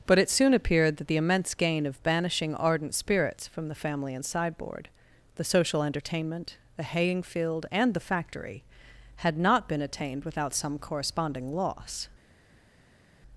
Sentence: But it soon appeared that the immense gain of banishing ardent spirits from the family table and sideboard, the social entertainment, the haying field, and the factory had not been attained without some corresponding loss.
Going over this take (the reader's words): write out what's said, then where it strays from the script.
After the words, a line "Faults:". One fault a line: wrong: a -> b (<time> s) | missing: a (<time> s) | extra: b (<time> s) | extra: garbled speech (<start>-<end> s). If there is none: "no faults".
But it soon appeared that the immense gain of banishing ardent spirits from the family and sideboard, the social entertainment, the haying field, and the factory had not been attained without some corresponding loss.
Faults:
missing: table (4.1 s)